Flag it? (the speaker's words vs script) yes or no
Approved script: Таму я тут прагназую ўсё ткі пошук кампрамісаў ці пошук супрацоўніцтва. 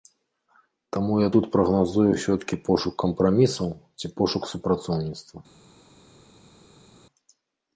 no